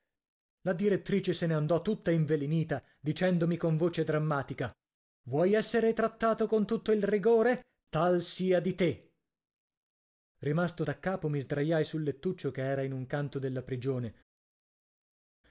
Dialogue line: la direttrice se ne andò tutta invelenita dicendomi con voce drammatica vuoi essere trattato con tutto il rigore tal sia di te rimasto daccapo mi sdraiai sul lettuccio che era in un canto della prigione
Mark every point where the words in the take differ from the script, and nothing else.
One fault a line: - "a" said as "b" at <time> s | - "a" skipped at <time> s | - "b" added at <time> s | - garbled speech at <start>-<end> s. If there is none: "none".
none